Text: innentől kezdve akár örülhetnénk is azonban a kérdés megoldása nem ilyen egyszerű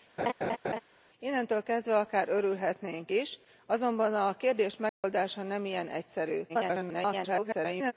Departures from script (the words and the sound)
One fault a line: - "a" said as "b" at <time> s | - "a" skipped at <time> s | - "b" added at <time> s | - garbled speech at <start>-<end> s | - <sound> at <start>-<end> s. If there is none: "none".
- laugh at 0.2-0.8 s
- dropout at 4.9-5.0 s
- garbled speech at 6.5-7.9 s